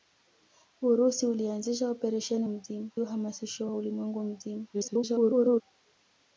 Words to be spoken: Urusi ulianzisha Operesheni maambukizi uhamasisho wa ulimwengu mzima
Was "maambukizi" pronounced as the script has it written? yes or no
no